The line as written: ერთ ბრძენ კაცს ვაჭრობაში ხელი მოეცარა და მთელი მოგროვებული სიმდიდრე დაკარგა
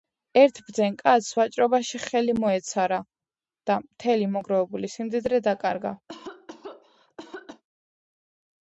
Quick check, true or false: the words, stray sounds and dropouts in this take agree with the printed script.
false